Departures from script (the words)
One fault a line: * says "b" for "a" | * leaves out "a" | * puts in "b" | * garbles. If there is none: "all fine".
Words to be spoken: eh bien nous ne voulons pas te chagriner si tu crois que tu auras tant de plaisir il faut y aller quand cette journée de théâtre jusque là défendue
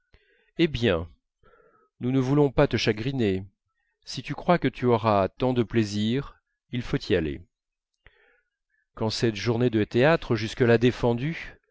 all fine